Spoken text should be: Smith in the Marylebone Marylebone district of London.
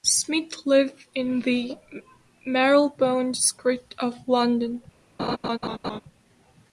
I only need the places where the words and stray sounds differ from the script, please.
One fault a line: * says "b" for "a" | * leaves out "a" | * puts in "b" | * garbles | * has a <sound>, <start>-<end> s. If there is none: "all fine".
* puts in "lived"
* leaves out "Marylebone"
* has a laugh, 5.2-6.0 s